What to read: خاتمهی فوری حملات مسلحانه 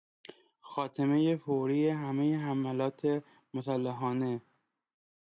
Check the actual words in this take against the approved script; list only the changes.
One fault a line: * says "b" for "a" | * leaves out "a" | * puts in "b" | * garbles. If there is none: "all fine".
* puts in "همهی"